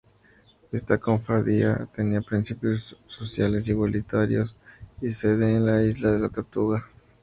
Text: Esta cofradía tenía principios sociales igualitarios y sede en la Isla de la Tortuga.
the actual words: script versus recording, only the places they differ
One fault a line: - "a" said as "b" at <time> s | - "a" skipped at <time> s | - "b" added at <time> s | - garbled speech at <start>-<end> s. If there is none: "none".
none